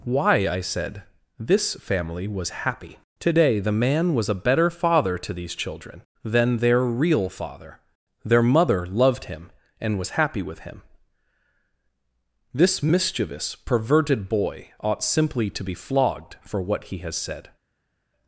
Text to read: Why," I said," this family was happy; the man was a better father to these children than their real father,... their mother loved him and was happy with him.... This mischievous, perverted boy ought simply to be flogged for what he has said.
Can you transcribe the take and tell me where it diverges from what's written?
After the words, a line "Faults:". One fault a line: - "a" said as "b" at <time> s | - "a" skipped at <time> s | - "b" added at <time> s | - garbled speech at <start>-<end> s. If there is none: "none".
Why," I said," this family was happy; today the man was a better father to these children than their real father,... their mother loved him and was happy with him.... This mischievous, perverted boy ought simply to be flogged for what he has said.
Faults:
- "today" added at 3.2 s